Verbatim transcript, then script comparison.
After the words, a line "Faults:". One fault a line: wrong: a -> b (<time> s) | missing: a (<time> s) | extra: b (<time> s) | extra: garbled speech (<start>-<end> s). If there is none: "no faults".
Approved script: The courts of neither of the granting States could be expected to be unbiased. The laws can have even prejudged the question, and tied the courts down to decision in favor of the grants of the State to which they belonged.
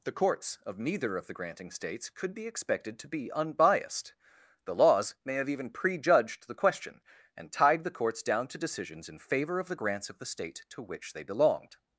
The courts of neither of the granting States could be expected to be unbiased. The laws may have even prejudged the question, and tied the courts down to decisions in favor of the grants of the State to which they belonged.
Faults:
wrong: can -> may (5.2 s)
wrong: decision -> decisions (8.6 s)